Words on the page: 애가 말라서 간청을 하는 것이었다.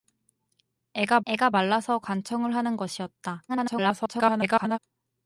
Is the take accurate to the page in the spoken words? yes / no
no